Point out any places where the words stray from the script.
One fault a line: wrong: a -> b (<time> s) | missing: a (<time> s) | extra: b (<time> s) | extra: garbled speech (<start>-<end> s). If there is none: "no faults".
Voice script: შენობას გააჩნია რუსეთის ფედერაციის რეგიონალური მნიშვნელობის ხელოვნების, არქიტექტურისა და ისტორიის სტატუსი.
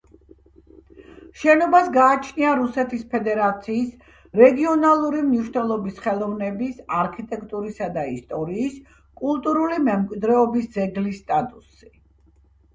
extra: კულტურული მემკვიდრეობის ძეგლის (9.2 s)